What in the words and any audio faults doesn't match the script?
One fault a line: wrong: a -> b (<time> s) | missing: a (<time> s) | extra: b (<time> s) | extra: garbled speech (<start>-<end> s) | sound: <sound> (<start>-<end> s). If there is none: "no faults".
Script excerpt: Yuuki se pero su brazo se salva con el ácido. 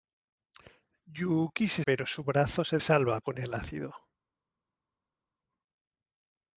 no faults